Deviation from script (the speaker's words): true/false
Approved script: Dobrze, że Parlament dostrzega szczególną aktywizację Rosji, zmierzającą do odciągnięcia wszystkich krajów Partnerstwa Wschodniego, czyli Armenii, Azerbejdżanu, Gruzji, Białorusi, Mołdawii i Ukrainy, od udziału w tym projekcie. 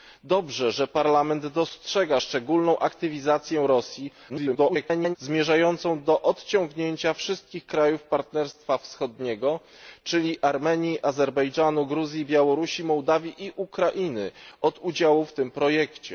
true